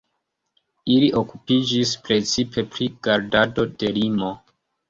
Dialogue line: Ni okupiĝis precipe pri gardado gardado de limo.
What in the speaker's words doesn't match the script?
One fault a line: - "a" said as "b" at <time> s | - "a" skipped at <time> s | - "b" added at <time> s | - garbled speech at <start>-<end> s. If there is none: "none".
- "Ni" said as "Ili" at 0.9 s
- "gardado" skipped at 3.7 s